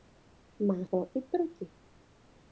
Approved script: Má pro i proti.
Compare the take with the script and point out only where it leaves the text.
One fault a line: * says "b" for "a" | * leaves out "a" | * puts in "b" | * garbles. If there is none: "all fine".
all fine